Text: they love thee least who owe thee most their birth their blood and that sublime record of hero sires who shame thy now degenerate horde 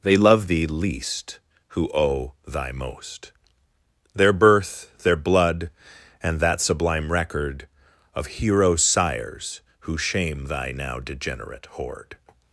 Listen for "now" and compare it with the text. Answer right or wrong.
right